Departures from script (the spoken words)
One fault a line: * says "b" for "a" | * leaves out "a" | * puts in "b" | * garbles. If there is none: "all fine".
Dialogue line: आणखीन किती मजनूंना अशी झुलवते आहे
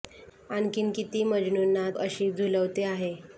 all fine